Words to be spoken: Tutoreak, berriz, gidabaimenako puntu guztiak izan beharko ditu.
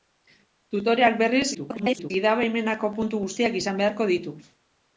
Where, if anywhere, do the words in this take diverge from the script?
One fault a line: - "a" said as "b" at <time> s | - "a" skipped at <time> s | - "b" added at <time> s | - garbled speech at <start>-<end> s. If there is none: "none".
- garbled speech at 1.5-2.1 s